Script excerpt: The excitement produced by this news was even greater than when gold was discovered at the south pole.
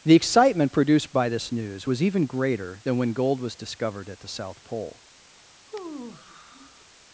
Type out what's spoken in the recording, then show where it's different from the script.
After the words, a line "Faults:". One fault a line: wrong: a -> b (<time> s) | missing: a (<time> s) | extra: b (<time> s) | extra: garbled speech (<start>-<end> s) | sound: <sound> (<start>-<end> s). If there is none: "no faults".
The excitement produced by this news was even greater than when gold was discovered at the south pole.
Faults:
sound: sigh (5.7-6.9 s)